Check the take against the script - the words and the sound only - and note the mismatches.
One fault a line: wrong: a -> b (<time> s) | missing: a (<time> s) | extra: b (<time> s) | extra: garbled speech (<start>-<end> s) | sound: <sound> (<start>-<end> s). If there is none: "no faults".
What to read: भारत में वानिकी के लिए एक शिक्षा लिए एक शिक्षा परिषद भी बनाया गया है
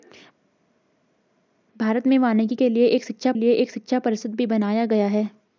no faults